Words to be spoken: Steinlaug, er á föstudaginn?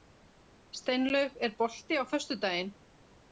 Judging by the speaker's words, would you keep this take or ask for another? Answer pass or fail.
fail